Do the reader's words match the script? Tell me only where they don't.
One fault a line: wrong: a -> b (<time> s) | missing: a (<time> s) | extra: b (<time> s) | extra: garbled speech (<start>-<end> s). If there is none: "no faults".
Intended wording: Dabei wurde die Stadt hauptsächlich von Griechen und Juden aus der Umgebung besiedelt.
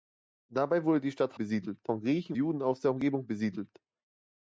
wrong: hauptsächlich -> besiedelt (1.3 s)
missing: und (2.4 s)